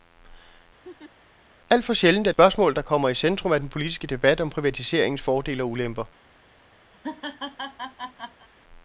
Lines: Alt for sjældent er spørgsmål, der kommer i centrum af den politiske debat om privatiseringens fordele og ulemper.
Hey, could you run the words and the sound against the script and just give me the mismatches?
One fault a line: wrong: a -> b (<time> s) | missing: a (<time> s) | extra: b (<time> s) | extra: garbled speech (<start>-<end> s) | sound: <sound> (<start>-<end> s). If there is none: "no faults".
sound: laugh (0.8-1.1 s)
sound: laugh (6.9-8.5 s)